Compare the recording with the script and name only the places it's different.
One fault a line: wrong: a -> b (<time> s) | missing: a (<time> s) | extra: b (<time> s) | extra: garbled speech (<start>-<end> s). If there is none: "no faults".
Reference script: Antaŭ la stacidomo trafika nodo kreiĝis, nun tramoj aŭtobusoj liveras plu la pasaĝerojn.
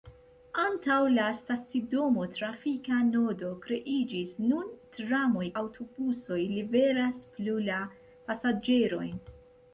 no faults